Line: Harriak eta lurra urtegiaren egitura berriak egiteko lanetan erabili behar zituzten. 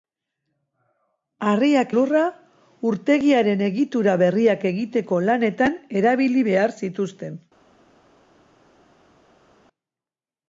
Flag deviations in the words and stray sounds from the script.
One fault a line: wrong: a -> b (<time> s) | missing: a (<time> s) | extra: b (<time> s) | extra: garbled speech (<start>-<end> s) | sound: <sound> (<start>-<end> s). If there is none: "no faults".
missing: eta (1.9 s)